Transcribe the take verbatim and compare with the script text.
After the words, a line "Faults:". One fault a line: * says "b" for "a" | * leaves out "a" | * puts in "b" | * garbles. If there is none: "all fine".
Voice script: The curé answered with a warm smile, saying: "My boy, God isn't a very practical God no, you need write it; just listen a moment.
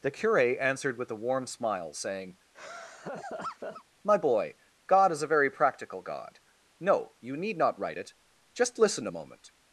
The curé answered with a warm smile, saying: "My boy, God is a very practical God no, you need not write it; just listen a moment.
Faults:
* says "is" for "isn't"
* puts in "not"